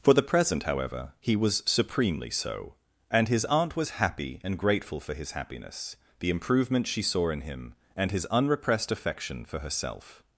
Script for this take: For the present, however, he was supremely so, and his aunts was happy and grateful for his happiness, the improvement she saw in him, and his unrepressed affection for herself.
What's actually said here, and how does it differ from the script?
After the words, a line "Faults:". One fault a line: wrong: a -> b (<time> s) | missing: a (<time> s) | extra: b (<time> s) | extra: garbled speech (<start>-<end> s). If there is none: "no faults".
For the present, however, he was supremely so, and his aunt was happy and grateful for his happiness, the improvement she saw in him, and his unrepressed affection for herself.
Faults:
wrong: aunts -> aunt (3.5 s)